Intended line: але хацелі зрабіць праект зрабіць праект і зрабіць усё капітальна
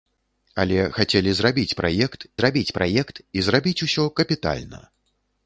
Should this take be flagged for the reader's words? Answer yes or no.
no